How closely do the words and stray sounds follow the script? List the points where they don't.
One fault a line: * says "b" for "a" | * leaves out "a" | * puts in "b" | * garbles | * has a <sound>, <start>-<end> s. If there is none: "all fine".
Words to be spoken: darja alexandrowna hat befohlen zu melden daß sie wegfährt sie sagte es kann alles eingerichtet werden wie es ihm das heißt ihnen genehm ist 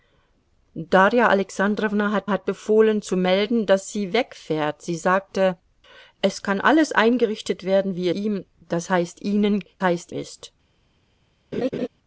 * puts in "hat"
* leaves out "es"
* says "heißt" for "genehm"
* has a laugh, 11.5-11.9 s